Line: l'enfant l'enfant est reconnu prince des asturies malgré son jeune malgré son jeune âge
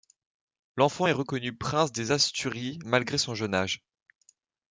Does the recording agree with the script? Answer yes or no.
no